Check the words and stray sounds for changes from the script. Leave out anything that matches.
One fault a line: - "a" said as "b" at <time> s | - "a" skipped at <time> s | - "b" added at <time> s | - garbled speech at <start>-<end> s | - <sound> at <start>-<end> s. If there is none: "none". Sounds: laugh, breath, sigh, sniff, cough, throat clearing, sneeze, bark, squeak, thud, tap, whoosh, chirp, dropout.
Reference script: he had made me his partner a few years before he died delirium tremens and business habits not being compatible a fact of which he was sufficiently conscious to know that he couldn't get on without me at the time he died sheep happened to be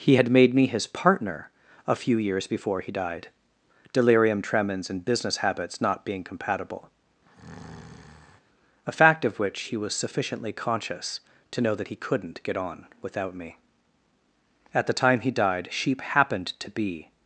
- breath at 7.3-8.4 s